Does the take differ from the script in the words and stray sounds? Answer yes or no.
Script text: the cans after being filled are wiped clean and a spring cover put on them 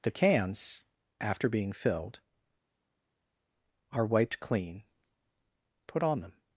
yes